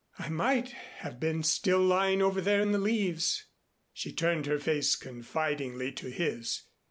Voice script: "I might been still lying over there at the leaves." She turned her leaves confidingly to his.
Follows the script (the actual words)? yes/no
no